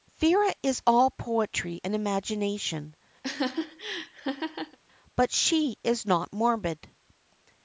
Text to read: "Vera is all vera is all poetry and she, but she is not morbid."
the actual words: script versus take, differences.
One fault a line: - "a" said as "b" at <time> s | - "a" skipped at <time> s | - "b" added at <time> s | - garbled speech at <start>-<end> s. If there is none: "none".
- "vera is all" skipped at 1.1 s
- "she" said as "imagination" at 1.9 s